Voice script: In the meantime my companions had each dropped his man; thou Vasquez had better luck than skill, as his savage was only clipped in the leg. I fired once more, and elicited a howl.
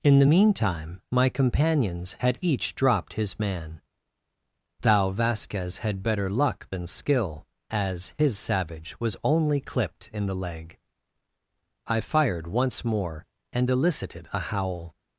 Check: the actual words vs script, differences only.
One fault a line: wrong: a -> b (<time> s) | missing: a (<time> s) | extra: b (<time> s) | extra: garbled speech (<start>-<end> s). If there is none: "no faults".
no faults